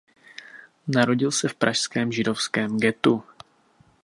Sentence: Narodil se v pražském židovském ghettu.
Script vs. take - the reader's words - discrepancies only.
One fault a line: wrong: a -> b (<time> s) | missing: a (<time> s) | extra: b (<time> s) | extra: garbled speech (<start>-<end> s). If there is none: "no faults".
no faults